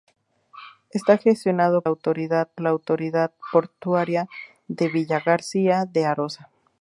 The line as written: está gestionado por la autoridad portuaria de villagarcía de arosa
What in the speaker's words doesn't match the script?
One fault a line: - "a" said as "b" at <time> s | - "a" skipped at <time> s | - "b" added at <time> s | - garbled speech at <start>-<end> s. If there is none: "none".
- "por" said as "autoridad" at 1.8 s